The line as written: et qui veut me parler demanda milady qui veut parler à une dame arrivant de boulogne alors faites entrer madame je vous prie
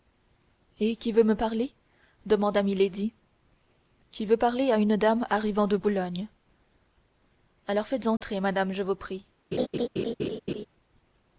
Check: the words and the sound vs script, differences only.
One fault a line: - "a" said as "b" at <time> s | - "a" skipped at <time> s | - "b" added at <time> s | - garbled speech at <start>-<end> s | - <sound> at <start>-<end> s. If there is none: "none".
- dropout at 8.2-8.2 s
- laugh at 9.5-10.7 s